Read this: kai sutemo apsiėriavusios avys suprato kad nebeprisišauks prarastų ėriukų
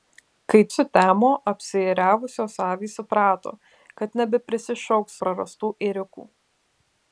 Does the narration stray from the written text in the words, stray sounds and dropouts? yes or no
no